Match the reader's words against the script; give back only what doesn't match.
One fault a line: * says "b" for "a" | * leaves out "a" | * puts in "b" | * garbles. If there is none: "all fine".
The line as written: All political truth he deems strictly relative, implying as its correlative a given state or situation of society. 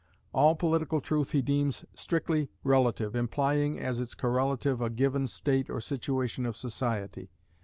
all fine